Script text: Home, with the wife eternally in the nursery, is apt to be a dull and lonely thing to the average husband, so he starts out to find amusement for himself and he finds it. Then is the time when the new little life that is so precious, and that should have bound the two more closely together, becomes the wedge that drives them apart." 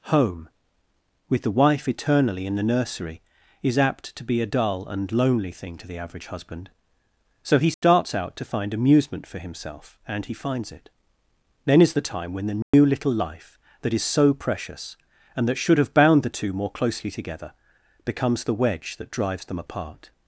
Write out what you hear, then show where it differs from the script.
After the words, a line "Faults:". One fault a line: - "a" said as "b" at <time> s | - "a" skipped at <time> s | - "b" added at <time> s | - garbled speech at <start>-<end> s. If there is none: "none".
Home, with the wife eternally in the nursery, is apt to be a dull and lonely thing to the average husband, so he starts out to find amusement for himself and he finds it. Then is the time when the new little life that is so precious, and that should have bound the two more closely together, becomes the wedge that drives them apart."
Faults:
none